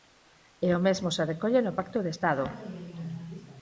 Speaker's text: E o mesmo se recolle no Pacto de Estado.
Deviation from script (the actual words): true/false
false